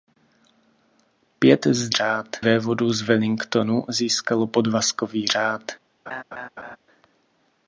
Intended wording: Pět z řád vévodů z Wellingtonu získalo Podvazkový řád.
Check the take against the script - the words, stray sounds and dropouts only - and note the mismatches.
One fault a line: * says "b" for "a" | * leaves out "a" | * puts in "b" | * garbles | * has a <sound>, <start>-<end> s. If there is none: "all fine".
* has a laugh, 6.1-6.8 s